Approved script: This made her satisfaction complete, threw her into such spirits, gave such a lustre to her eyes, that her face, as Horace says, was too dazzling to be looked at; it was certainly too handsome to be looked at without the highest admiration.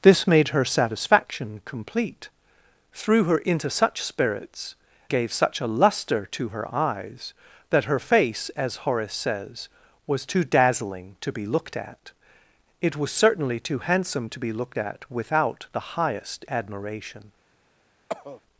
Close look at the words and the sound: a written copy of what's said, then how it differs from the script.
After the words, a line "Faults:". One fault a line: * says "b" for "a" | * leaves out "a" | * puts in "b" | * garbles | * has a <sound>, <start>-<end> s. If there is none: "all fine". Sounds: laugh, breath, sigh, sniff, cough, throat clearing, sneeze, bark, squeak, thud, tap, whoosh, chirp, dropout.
This made her satisfaction complete, threw her into such spirits, gave such a lustre to her eyes, that her face, as Horace says, was too dazzling to be looked at; it was certainly too handsome to be looked at without the highest admiration.
Faults:
* has a cough, 18.1-18.4 s